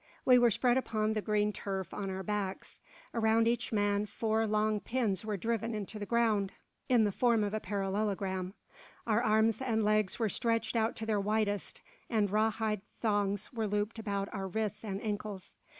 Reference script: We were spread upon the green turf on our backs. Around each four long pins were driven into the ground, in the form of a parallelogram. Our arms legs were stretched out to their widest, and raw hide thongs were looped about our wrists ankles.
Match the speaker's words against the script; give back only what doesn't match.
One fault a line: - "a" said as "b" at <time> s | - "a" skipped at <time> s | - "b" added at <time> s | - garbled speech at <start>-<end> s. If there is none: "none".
- "man" added at 3.7 s
- "and" added at 9.6 s
- "and" added at 14.8 s